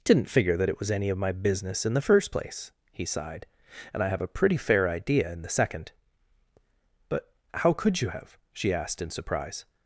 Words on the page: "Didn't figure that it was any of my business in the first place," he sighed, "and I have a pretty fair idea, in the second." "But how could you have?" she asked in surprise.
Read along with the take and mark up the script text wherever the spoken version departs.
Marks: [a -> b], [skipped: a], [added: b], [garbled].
"Didn't figure that it was any of my business in the first place," he sighed, "and I have a pretty fair idea, in the second." "But how could you have?" she asked in surprise.